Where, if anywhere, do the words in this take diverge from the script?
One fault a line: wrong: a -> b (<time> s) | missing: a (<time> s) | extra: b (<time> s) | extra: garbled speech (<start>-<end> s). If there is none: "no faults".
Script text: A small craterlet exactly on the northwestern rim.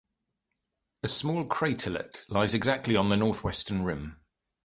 extra: lies (2.3 s)